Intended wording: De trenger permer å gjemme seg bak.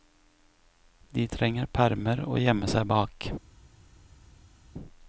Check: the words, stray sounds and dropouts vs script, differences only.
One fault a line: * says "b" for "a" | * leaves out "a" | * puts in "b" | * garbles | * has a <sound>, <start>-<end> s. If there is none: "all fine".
all fine